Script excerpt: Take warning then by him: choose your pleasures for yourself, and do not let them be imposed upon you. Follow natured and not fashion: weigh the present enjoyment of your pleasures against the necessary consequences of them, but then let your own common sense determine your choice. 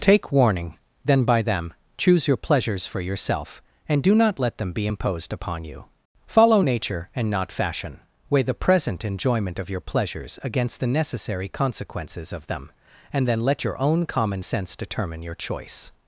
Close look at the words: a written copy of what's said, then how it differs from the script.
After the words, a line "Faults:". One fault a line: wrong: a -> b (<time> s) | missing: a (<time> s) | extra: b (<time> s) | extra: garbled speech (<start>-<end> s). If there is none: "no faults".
Take warning then by them: choose your pleasures for yourself, and do not let them be imposed upon you. Follow nature and not fashion: weigh the present enjoyment of your pleasures against the necessary consequences of them, and then let your own common sense determine your choice.
Faults:
wrong: him -> them (1.4 s)
wrong: natured -> nature (6.6 s)
wrong: but -> and (13.1 s)